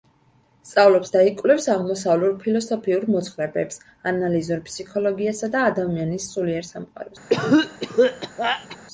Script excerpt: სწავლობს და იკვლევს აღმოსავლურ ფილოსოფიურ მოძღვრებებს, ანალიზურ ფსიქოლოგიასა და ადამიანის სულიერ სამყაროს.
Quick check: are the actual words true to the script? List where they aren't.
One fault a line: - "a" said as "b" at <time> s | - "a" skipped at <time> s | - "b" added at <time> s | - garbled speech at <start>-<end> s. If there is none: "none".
none